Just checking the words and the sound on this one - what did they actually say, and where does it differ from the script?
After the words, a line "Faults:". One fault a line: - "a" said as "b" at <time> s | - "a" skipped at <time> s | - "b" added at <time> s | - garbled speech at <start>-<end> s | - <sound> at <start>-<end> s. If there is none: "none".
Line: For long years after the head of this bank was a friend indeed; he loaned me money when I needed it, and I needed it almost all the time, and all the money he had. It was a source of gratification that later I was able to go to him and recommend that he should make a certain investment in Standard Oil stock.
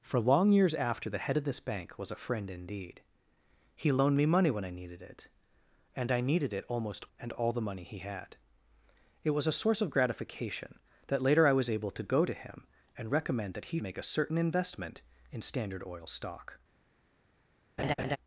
For long years after the head of this bank was a friend indeed; he loaned me money when I needed it, and I needed it almost and all the money he had. It was a source of gratification that later I was able to go to him and recommend that he make a certain investment in Standard Oil stock.
Faults:
- "all the time" skipped at 7.0 s
- "should" skipped at 13.8 s
- laugh at 17.8-18.2 s